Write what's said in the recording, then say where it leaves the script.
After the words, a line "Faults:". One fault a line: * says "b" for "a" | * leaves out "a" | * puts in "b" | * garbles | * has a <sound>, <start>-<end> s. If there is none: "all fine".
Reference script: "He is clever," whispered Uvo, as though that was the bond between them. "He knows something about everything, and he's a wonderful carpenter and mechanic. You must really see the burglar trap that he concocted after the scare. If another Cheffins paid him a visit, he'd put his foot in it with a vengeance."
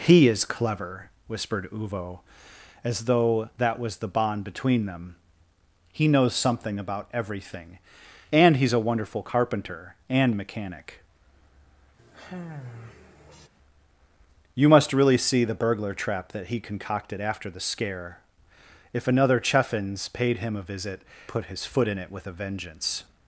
"He is clever," whispered Uvo, as though that was the bond between them. "He knows something about everything, and he's a wonderful carpenter and mechanic. You must really see the burglar trap that he concocted after the scare. If another Cheffins paid him a visit, put his foot in it with a vengeance."
Faults:
* has a sigh, 12.0-13.5 s
* leaves out "he'd"